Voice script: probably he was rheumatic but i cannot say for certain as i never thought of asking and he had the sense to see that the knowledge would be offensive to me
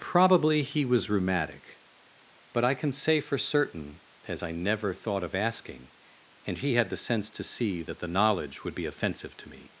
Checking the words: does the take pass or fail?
fail